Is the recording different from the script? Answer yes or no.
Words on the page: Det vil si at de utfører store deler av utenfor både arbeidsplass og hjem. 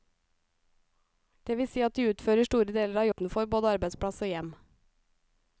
no